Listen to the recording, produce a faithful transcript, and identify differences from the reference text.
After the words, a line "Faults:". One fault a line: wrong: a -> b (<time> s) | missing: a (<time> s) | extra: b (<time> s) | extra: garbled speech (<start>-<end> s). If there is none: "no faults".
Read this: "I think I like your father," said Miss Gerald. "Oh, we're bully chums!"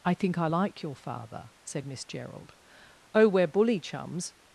"I think I like your father," said Miss Gerald. "Oh, we're bully chums!"
Faults:
no faults